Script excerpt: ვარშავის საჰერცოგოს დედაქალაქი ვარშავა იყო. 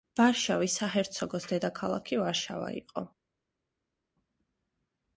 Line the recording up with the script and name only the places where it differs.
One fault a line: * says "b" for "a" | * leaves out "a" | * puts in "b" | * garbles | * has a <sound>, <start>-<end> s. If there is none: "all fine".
all fine